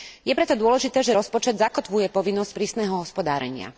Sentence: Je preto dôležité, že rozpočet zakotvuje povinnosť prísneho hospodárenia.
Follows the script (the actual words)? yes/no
yes